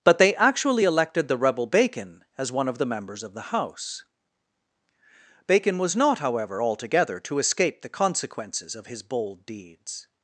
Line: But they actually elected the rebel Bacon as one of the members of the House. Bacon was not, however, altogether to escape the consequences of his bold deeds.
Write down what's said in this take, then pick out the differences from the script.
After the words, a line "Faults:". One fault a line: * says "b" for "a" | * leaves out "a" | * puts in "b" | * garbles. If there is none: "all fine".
But they actually elected the rebel Bacon as one of the members of the House. Bacon was not, however, altogether to escape the consequences of his bold deeds.
Faults:
all fine